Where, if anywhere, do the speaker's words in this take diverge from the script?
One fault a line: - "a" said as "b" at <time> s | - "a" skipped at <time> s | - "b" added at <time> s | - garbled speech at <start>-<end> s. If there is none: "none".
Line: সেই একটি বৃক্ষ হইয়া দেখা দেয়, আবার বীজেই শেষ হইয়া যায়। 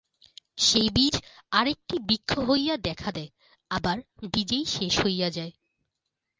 - "বীজ আর" added at 0.9 s